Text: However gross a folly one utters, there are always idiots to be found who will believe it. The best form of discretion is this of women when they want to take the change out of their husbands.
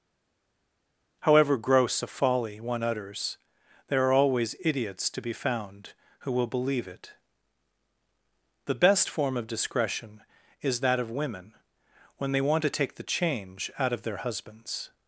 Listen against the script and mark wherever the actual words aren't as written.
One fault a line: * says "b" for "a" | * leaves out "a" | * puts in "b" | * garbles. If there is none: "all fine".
* says "that" for "this"